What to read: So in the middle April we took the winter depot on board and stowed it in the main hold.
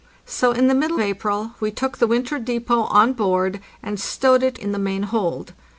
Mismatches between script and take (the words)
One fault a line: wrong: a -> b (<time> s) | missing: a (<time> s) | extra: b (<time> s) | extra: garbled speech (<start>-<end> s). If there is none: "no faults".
no faults